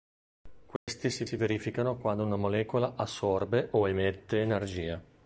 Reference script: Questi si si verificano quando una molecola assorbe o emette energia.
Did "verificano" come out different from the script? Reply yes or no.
no